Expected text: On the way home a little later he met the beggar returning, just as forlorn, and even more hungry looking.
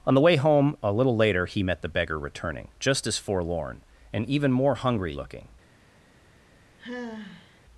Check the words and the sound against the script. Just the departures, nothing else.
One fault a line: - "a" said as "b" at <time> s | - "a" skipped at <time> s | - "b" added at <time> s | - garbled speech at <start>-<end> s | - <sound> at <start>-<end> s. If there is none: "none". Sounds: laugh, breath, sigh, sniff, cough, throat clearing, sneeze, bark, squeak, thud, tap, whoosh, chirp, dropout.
- sigh at 6.8-7.6 s